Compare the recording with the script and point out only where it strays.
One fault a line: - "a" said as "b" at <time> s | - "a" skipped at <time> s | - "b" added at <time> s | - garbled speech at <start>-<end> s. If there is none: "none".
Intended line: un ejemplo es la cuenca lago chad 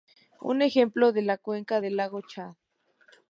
- "del" added at 1.8 s